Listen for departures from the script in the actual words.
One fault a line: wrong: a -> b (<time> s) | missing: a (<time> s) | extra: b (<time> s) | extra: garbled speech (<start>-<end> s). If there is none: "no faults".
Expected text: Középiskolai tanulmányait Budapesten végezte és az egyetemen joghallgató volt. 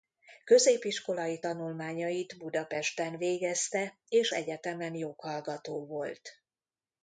missing: az (4.3 s)